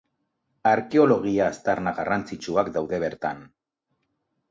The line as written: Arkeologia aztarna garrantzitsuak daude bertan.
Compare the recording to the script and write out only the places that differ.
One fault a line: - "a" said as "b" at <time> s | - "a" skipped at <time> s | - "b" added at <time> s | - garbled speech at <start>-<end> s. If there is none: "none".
none